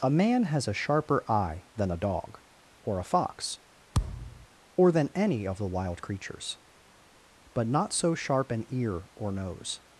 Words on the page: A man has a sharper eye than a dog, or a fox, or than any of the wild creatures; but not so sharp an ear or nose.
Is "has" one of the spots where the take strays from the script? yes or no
no